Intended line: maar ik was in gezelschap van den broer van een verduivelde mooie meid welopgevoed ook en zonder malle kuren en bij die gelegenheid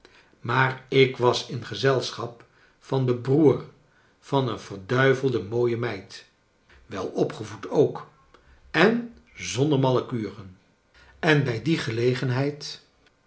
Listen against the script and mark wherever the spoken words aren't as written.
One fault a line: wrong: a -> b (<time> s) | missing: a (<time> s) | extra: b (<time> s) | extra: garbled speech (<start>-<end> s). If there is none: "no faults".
no faults